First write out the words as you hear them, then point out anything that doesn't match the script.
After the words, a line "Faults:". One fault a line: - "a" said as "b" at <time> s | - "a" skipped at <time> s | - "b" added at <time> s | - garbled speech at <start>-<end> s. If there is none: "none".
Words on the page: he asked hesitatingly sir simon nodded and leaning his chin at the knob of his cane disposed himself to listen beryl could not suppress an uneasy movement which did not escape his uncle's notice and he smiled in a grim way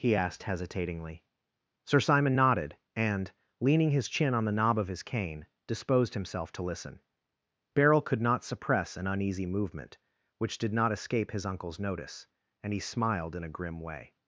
he asked hesitatingly sir simon nodded and leaning his chin on the knob of his cane disposed himself to listen beryl could not suppress an uneasy movement which did not escape his uncle's notice and he smiled in a grim way
Faults:
- "at" said as "on" at 4.3 s